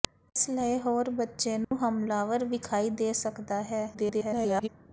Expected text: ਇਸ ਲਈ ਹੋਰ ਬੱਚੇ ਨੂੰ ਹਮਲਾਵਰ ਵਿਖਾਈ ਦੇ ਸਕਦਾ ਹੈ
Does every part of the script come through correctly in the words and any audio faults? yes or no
no